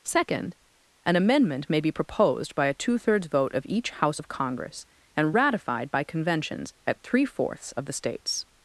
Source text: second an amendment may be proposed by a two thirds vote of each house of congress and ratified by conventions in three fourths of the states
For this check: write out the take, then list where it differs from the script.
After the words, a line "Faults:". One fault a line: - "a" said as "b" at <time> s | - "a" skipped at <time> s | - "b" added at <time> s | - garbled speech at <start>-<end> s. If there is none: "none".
second an amendment may be proposed by a two thirds vote of each house of congress and ratified by conventions at three fourths of the states
Faults:
- "in" said as "at" at 6.9 s